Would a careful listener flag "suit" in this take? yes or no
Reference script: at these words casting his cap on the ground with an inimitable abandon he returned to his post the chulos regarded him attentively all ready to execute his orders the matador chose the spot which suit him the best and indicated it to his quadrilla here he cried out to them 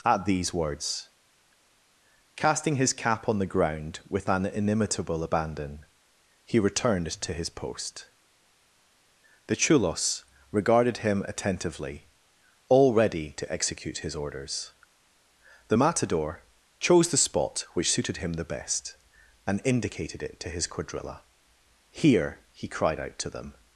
yes